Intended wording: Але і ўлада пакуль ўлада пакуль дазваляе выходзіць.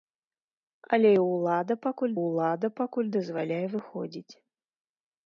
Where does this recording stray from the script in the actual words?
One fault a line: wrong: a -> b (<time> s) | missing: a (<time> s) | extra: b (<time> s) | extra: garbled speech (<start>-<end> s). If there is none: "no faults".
no faults